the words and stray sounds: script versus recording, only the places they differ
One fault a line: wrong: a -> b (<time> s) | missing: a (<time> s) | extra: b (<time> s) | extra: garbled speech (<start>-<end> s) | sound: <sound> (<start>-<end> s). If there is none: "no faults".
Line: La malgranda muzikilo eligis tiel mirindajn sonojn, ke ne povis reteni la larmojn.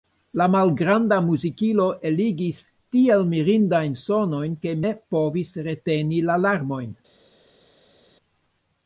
no faults